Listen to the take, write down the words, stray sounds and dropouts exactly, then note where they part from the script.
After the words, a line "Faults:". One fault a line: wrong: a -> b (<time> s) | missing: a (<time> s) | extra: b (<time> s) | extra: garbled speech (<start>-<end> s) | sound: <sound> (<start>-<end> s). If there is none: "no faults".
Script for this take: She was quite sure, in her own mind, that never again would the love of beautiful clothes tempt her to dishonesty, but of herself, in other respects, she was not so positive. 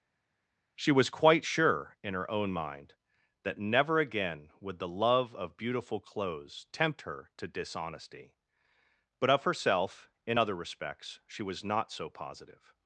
She was quite sure, in her own mind, that never again would the love of beautiful clothes tempt her to dishonesty, but of herself, in other respects, she was not so positive.
Faults:
no faults